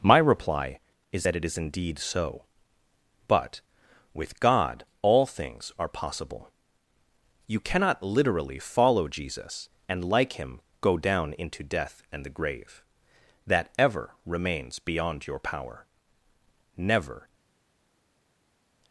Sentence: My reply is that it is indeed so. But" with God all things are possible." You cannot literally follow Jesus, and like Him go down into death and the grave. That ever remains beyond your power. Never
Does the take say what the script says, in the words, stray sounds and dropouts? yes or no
yes